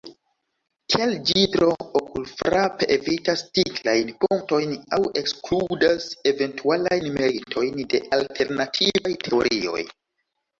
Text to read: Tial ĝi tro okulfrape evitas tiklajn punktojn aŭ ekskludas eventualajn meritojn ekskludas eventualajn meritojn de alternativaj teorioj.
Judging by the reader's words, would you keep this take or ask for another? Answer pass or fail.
fail